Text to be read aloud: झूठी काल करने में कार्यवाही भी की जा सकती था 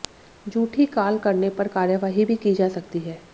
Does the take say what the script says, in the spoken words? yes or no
no